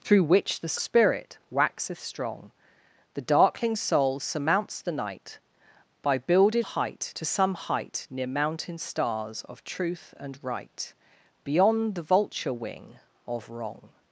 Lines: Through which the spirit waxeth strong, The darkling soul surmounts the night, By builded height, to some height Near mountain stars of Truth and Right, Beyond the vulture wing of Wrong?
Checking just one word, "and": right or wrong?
right